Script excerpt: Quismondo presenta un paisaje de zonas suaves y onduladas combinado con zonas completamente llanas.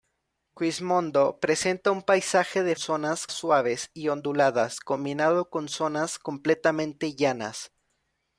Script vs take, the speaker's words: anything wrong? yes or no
no